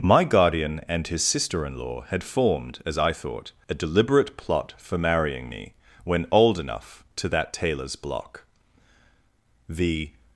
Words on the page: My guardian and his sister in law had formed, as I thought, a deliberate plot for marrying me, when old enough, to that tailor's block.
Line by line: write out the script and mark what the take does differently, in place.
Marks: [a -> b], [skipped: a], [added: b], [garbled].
My guardian and his sister in law had formed, as I thought, a deliberate plot for marrying me, when old enough, to that tailor's block. [added: The]